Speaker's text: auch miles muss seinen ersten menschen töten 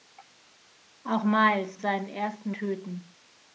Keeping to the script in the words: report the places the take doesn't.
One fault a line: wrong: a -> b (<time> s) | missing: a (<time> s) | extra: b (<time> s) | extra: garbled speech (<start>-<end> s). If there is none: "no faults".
missing: muss (1.8 s)
missing: menschen (2.5 s)